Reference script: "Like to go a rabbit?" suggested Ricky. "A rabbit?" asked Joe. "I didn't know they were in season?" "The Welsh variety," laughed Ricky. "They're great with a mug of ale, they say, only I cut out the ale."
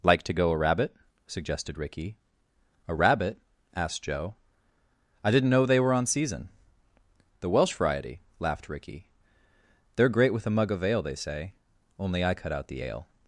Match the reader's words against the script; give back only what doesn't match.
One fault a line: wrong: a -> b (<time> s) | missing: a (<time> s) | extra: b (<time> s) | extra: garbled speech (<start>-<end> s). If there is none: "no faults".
wrong: in -> on (5.9 s)